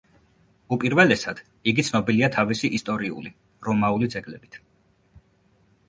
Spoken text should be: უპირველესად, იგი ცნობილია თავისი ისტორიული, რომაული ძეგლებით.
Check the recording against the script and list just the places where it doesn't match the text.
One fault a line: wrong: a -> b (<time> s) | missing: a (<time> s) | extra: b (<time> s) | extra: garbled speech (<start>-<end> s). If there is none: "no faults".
no faults